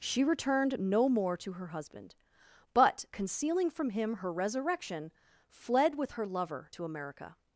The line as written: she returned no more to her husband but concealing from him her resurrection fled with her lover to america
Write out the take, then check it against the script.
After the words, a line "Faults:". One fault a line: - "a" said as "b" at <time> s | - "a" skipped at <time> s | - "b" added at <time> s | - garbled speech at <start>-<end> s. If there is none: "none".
she returned no more to her husband but concealing from him her resurrection fled with her lover to america
Faults:
none